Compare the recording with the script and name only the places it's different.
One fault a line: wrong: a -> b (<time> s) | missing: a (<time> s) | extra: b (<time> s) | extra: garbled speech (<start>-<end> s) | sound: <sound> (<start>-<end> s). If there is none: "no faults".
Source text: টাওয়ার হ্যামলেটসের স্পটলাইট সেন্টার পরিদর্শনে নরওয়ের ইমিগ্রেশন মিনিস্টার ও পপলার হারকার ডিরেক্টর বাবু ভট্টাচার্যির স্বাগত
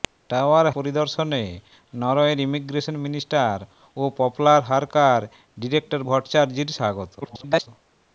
missing: হ্যামলেটসের স্পটলাইট সেন্টার (0.7 s)
missing: বাবু (6.0 s)
extra: garbled speech (7.2-7.7 s)